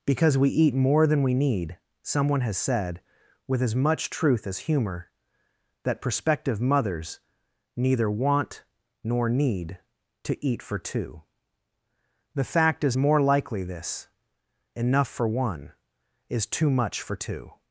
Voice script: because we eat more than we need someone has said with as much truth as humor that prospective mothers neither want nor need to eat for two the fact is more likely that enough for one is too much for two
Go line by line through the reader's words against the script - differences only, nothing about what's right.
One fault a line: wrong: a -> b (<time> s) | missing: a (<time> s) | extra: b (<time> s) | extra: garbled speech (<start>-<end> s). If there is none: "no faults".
wrong: that -> this (13.6 s)